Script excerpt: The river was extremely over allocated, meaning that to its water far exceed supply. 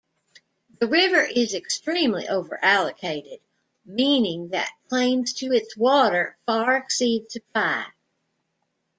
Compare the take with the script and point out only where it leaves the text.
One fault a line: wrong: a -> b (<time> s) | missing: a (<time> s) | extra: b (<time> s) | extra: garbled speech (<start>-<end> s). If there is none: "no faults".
wrong: was -> is (1.2 s)
extra: claims (4.9 s)